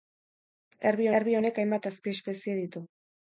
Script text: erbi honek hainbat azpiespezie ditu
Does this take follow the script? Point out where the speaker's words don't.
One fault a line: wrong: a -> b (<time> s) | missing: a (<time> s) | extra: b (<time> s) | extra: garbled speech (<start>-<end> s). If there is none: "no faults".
extra: erbi (1.2 s)